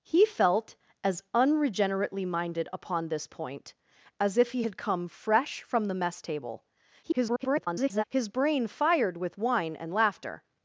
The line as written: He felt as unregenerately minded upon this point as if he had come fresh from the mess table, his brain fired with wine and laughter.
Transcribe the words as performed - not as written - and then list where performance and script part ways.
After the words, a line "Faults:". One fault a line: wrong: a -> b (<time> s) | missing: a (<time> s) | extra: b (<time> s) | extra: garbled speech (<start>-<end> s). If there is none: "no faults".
He felt as unregenerately minded upon this point as if he had come fresh from the mess table, [garbled] his brain fired with wine and laughter.
Faults:
extra: garbled speech (7.0-8.0 s)